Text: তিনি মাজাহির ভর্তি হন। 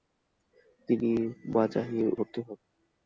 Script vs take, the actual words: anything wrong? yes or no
no